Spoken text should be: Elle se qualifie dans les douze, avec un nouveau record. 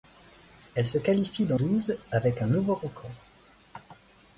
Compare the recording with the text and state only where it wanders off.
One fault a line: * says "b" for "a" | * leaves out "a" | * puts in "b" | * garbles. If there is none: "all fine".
* leaves out "les"